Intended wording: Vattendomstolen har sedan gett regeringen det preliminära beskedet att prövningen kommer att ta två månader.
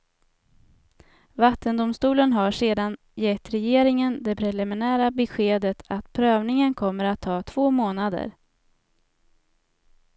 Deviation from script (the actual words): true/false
false